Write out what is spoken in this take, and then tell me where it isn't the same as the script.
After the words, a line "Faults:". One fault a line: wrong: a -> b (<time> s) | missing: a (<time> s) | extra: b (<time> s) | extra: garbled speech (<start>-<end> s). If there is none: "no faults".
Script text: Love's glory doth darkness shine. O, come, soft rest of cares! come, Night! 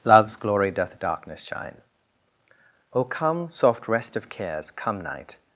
Love's glory doth darkness shine. O, come, soft rest of cares! come, Night!
Faults:
no faults